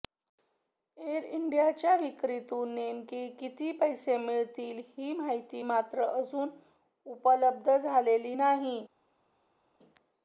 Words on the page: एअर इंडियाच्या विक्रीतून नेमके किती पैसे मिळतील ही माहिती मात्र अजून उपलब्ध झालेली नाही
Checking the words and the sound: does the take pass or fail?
pass